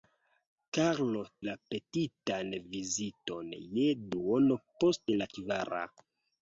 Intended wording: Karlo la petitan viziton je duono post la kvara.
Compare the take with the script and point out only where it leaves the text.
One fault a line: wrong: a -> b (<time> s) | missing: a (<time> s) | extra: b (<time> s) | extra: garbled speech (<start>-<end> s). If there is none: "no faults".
no faults